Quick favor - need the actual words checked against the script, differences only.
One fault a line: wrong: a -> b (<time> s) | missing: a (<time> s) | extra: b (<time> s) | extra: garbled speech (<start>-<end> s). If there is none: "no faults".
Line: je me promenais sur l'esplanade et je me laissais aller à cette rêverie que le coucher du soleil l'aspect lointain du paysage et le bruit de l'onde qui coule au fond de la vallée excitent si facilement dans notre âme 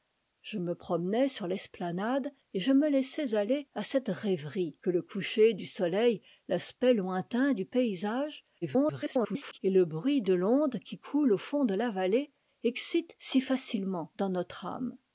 extra: garbled speech (8.6-9.6 s)